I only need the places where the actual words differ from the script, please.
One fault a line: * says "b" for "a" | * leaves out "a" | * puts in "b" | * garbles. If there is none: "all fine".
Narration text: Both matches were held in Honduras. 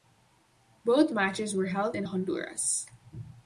all fine